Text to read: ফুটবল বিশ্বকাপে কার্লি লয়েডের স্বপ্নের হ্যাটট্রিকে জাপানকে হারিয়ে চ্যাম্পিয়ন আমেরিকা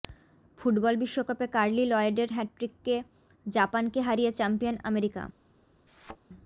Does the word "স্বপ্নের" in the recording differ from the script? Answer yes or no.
yes